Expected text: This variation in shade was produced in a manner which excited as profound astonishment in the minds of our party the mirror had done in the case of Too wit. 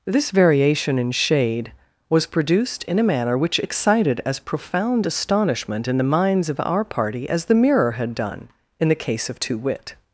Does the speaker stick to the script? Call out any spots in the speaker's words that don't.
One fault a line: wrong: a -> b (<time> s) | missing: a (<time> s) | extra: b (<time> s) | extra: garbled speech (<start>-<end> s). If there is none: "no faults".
extra: as (7.3 s)